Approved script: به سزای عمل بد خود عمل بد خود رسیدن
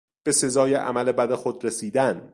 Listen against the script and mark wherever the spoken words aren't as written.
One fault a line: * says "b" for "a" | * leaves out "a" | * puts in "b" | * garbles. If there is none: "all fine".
* leaves out "عمل بد خود"